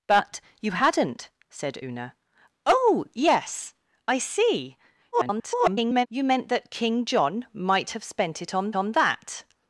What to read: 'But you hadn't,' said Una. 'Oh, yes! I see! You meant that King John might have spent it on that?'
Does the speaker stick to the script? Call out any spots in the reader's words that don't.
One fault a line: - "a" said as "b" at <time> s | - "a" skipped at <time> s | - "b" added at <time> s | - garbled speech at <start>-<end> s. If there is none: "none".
- garbled speech at 5.1-6.1 s
- "on" added at 8.7 s